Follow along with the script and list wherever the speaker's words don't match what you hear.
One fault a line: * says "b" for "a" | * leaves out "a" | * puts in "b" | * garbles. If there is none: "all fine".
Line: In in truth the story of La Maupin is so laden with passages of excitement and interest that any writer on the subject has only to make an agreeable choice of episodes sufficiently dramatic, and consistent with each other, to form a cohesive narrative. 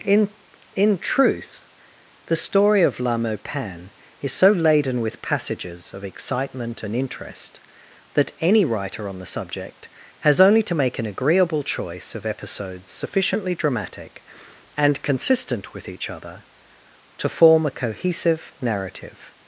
all fine